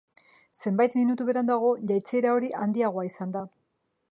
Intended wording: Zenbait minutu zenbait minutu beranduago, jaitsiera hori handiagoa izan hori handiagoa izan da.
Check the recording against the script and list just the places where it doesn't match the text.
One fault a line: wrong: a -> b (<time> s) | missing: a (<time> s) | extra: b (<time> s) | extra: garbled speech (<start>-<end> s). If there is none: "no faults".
missing: zenbait minutu (1.3 s)
missing: hori handiagoa izan (3.4 s)